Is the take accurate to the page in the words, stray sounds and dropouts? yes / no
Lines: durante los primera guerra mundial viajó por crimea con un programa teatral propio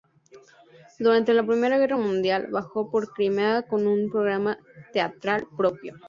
no